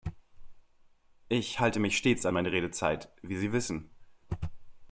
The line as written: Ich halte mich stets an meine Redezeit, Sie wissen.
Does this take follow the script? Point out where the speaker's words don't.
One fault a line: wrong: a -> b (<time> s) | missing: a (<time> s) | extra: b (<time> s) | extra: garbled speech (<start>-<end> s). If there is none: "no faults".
extra: wie (3.2 s)